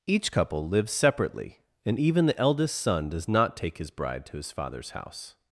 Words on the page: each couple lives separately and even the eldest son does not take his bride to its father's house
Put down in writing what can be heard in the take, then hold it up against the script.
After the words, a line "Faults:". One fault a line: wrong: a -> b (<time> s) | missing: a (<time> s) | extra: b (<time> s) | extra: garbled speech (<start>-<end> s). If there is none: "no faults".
each couple lives separately and even the eldest son does not take his bride to his father's house
Faults:
wrong: its -> his (4.4 s)